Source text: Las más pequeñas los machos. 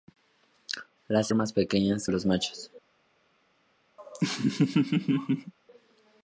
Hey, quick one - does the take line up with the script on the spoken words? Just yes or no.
yes